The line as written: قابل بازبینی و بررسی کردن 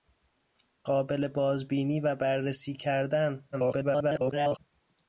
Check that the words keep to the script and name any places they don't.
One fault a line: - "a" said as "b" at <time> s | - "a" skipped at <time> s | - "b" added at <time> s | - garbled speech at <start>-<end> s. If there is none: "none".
- garbled speech at 3.5-4.6 s